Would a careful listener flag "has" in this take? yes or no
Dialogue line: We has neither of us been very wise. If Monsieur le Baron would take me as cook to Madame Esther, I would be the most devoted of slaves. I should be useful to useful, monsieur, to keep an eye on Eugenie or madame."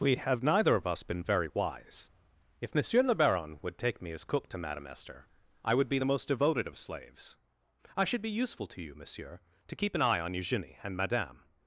yes